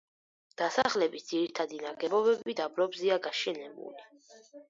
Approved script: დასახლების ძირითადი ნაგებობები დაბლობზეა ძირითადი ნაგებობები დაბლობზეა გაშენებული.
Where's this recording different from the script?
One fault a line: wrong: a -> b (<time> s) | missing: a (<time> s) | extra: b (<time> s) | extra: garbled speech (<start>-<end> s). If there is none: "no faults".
missing: ძირითადი ნაგებობები დაბლობზეა (3.2 s)